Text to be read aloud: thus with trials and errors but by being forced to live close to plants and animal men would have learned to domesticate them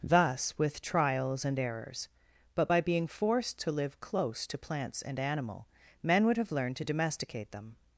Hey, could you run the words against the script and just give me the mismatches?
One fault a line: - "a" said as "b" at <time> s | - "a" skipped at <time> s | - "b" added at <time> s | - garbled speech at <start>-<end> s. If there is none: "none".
none